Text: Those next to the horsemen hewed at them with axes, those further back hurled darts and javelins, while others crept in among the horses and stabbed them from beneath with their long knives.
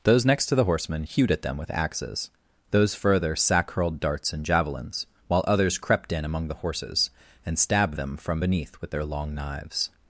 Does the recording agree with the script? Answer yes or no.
no